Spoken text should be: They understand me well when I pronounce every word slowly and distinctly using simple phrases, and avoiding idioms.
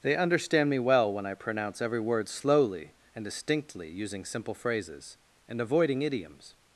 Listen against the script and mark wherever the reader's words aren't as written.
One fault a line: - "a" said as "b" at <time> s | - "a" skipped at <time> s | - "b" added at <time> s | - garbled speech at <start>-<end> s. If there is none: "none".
none